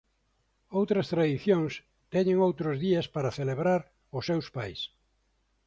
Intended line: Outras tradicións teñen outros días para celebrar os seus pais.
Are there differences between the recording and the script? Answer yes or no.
no